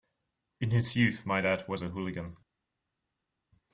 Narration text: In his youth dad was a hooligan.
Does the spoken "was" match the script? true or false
true